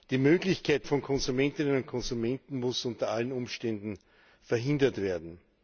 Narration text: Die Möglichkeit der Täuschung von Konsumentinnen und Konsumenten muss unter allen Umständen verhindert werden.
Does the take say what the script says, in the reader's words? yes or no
no